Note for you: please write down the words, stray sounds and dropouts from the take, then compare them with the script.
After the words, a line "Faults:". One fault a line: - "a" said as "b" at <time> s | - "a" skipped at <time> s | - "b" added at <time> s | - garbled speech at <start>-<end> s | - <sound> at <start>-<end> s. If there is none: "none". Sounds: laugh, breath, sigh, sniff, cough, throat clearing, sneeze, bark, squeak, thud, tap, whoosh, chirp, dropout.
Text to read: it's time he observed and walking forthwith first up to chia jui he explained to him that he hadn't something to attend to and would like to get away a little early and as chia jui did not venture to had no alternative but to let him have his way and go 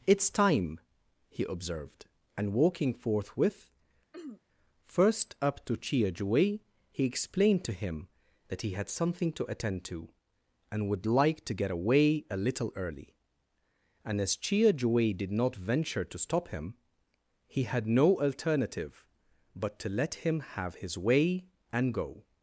it's time he observed and walking forthwith first up to chia jui he explained to him that he had something to attend to and would like to get away a little early and as chia jui did not venture to stop him he had no alternative but to let him have his way and go
Faults:
- throat clearing at 4.1-4.4 s
- "hadn't" said as "had" at 8.7 s
- "stop him he" added at 16.2 s